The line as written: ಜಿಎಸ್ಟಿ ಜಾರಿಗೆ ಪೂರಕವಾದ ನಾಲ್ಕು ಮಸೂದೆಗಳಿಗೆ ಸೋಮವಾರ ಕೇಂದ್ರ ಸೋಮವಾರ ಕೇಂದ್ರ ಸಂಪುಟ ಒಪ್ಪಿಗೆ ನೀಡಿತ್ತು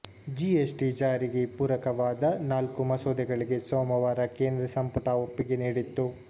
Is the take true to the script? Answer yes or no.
no